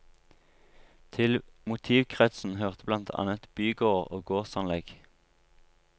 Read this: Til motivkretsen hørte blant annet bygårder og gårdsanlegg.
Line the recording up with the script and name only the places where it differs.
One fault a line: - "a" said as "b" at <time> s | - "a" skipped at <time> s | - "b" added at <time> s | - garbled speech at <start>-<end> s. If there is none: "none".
none